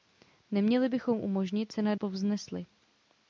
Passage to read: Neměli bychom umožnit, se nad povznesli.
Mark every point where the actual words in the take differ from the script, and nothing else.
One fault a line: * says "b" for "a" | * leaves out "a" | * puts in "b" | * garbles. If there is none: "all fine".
all fine